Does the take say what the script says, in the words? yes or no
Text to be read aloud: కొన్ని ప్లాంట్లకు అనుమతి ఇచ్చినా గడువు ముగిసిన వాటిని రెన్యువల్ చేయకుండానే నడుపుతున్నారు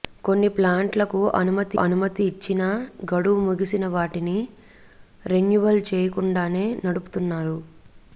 no